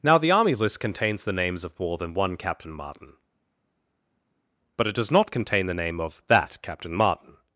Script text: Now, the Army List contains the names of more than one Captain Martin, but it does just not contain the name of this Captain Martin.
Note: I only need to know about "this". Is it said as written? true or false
false